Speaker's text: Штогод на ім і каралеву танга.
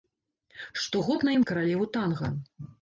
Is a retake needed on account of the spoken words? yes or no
no